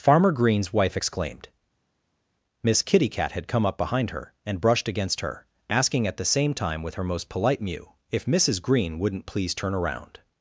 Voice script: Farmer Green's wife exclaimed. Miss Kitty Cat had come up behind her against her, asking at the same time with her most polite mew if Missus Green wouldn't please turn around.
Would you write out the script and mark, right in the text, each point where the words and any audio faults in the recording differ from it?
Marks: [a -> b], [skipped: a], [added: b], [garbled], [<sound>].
Farmer Green's wife exclaimed. Miss Kitty Cat had come up behind her [added: and brushed] against her, asking at the same time with her most polite mew if Missus Green wouldn't please turn around.